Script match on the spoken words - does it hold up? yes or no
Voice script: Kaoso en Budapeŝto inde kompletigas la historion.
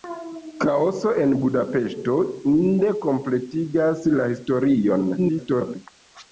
no